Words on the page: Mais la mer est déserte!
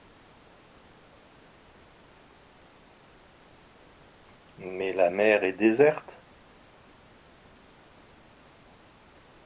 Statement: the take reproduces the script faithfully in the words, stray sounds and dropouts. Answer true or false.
true